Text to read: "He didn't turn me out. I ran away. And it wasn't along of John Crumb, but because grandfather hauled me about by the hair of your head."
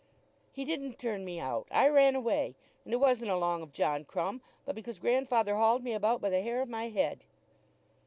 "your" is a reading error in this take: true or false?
true